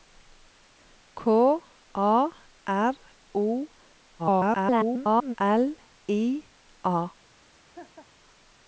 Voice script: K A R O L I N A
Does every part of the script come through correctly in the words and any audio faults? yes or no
no